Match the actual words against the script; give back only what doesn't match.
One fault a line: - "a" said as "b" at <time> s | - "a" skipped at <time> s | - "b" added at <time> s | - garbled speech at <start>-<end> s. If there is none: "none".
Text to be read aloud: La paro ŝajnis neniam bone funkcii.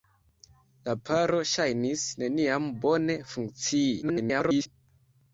- garbled speech at 4.0-4.7 s